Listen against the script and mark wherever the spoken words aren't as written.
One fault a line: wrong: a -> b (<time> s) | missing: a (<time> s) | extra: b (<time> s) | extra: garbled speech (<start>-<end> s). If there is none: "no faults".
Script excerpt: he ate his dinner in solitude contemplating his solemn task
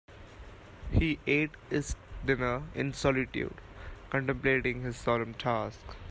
no faults